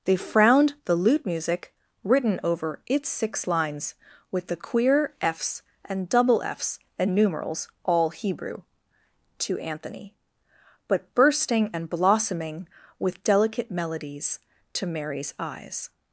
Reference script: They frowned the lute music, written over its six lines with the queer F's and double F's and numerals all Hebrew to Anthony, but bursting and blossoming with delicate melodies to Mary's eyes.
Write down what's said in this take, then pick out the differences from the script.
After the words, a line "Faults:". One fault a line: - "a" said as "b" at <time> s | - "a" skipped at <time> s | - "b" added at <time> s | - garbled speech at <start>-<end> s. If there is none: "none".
They frowned the lute music, written over its six lines with the queer F's and double F's and numerals all Hebrew to Anthony, but bursting and blossoming with delicate melodies to Mary's eyes.
Faults:
none